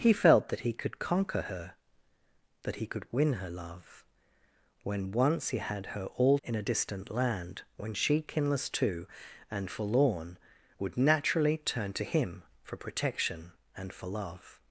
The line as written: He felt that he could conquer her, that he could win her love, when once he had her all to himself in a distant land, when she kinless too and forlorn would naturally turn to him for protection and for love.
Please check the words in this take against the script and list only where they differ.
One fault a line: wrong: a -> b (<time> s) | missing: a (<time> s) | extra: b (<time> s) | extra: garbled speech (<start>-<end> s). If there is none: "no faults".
missing: to himself (6.4 s)